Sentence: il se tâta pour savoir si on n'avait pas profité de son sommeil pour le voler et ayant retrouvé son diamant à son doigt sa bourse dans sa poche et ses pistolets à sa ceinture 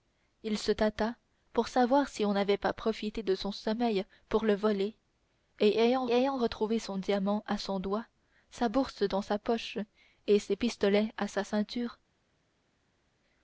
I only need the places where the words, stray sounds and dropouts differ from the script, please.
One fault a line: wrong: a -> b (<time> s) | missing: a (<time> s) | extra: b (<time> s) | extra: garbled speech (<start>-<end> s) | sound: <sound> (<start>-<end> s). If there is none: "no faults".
extra: ayant (6.1 s)